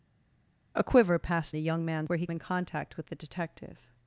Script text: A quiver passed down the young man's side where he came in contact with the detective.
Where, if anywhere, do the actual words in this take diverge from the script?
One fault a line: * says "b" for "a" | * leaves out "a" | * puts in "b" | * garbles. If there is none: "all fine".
* leaves out "down"
* leaves out "side"
* leaves out "came"